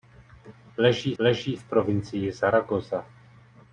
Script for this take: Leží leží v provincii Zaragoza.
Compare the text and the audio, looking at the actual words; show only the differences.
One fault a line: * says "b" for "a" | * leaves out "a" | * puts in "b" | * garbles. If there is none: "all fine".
all fine